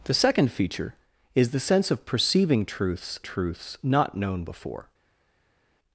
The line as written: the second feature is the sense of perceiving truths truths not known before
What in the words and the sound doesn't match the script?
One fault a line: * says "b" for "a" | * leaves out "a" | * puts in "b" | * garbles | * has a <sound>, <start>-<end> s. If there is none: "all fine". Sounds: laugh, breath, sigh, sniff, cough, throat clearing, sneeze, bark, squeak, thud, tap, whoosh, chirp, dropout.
all fine